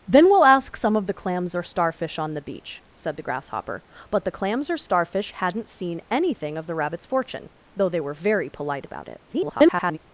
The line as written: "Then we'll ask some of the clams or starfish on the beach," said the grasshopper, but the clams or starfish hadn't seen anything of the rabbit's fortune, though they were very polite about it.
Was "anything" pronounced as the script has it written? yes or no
yes